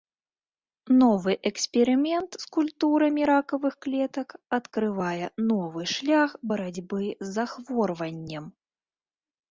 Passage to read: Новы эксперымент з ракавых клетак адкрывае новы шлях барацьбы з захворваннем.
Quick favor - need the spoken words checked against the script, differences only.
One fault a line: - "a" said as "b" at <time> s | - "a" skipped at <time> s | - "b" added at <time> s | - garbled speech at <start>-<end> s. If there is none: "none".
- "культурамі" added at 2.6 s